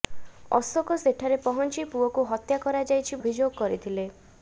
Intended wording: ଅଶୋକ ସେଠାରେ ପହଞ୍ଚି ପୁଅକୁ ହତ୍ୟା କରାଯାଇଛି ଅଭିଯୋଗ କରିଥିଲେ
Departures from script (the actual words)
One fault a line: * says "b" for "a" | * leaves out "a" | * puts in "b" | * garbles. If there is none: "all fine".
all fine